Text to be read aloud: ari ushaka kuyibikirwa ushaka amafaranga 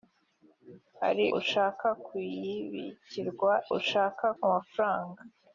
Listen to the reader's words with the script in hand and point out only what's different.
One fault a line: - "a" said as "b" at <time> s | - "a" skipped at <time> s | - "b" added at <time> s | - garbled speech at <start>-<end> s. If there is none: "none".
none